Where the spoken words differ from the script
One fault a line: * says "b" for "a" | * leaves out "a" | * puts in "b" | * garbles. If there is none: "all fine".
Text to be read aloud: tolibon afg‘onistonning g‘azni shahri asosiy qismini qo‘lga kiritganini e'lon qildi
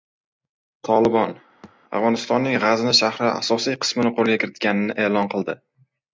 all fine